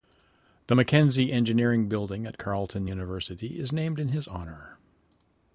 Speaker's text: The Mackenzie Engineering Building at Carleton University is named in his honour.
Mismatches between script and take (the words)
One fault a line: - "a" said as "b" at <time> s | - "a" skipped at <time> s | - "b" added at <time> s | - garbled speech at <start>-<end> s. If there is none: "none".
none